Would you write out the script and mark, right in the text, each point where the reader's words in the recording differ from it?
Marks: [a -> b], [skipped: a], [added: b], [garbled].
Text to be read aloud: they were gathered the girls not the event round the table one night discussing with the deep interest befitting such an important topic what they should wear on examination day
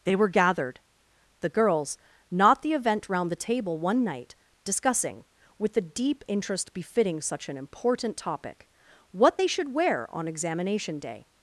they were gathered the girls not the event round the table one night discussing with the deep interest befitting such an important topic what they should wear on examination day